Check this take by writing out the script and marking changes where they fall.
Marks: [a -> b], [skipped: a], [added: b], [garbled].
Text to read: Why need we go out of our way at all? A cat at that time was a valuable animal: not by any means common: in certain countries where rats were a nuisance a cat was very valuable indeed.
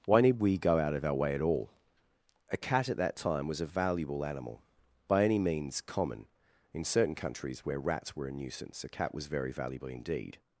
Why need we go out of our way at all? A cat at that time was a valuable animal: [skipped: not] by any means common: in certain countries where rats were a nuisance a cat was very valuable indeed.